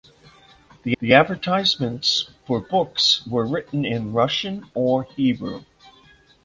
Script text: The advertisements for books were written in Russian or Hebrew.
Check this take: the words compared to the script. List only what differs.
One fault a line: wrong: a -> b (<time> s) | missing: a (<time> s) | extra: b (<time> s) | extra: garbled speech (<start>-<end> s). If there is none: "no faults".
extra: the (1.0 s)